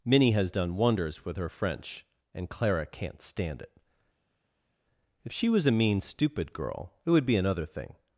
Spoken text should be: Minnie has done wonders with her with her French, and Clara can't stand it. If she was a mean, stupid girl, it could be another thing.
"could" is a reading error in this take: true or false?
true